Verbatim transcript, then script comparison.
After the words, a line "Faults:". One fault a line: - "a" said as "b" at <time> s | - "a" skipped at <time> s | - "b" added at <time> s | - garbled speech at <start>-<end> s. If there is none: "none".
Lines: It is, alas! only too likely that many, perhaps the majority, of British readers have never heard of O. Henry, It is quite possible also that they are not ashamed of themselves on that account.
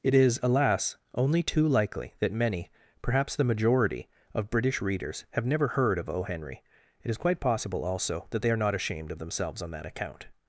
It is, alas! only too likely that many, perhaps the majority, of British readers have never heard of O. Henry, It is quite possible also that they are not ashamed of themselves on that account.
Faults:
none